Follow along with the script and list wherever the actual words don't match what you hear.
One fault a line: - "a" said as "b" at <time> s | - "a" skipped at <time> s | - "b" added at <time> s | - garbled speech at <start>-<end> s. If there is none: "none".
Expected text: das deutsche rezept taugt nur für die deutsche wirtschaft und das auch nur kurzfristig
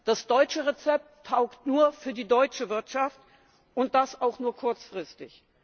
none